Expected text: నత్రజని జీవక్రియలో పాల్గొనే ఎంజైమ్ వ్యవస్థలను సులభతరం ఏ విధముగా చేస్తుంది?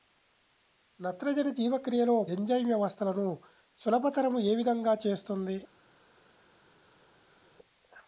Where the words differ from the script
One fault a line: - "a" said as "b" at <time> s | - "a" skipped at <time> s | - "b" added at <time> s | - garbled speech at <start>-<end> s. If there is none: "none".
- "పాల్గొనే" skipped at 2.1 s